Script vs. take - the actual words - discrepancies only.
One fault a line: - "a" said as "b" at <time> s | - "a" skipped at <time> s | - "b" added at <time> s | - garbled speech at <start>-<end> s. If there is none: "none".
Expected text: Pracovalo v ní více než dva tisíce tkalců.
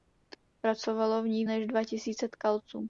- "více" skipped at 1.4 s